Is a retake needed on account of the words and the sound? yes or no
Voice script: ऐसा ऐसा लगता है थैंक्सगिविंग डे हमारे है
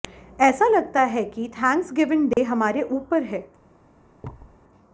yes